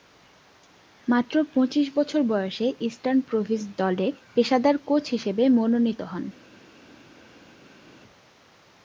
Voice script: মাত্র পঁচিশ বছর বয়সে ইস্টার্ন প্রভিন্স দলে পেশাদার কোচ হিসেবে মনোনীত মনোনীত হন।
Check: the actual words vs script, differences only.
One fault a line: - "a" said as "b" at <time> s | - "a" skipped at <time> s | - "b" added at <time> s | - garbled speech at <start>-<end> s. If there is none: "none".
- "মনোনীত" skipped at 6.0 s